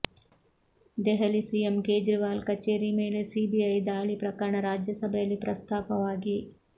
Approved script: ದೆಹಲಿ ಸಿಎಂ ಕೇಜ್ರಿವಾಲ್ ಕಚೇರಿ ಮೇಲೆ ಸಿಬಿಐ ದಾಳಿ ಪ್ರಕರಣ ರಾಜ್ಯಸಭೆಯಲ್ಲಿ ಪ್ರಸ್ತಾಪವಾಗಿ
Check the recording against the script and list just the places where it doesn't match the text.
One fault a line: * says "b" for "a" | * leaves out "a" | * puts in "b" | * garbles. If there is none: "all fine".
all fine